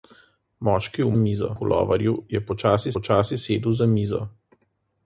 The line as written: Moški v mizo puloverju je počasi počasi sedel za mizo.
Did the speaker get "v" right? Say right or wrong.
right